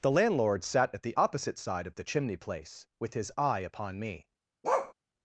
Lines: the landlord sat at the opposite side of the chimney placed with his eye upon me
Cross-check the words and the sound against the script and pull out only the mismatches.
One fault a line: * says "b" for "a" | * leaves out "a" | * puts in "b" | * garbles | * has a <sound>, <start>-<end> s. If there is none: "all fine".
* says "place" for "placed"
* has a bark, 4.6-4.9 s